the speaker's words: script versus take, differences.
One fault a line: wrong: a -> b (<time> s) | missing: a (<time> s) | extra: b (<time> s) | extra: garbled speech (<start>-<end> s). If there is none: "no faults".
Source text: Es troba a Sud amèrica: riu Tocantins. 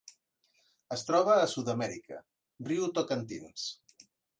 no faults